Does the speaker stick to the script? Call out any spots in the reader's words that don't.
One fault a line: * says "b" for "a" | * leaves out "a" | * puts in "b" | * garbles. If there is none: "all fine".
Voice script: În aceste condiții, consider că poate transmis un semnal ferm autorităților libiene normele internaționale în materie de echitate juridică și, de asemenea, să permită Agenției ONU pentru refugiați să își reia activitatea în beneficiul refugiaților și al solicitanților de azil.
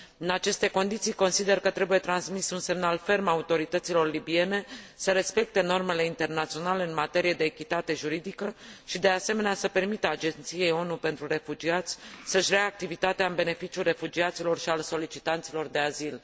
* says "trebuie" for "poate"
* puts in "să respecte"